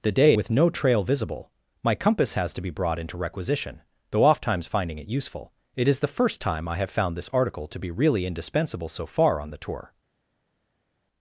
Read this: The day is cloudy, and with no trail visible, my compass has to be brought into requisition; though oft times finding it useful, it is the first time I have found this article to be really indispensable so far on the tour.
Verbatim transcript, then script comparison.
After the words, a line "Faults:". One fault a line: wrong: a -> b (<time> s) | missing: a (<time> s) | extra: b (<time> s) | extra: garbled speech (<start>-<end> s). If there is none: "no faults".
The day with no trail visible, my compass has to be brought into requisition; though oft times finding it useful, it is the first time I have found this article to be really indispensable so far on the tour.
Faults:
missing: is cloudy and (0.3 s)